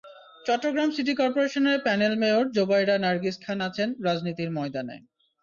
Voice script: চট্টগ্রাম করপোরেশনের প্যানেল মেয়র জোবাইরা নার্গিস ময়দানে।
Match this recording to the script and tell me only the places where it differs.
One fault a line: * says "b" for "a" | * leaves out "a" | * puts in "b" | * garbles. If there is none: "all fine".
* puts in "সিটি"
* puts in "খান আছেন রাজনীতির"